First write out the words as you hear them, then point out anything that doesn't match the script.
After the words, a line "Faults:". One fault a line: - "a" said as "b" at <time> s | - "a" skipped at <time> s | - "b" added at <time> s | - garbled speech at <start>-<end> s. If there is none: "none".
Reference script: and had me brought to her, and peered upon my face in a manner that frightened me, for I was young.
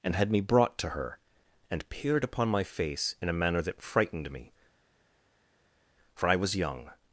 and had me brought to her, and peered upon my face in a manner that frightened me, for I was young.
Faults:
none